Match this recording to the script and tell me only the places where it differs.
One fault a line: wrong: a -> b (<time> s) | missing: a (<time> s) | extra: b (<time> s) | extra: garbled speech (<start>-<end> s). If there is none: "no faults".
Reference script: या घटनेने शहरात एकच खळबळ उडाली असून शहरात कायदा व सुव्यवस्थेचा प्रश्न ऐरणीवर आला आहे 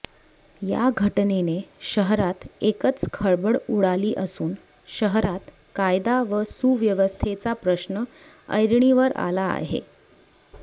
no faults